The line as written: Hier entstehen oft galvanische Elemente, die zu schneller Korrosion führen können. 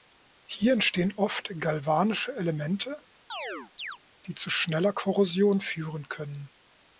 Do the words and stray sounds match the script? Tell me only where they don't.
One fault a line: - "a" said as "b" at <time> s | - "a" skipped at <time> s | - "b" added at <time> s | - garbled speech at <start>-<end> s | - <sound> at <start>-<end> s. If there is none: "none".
- chirp at 3.3-4.0 s